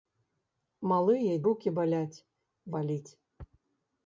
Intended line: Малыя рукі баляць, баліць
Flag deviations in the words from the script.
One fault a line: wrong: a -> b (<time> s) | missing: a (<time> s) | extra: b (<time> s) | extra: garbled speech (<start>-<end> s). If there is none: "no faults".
no faults